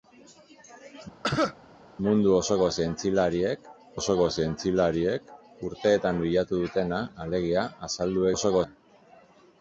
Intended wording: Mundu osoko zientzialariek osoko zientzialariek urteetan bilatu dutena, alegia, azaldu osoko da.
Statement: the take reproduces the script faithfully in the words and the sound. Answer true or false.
false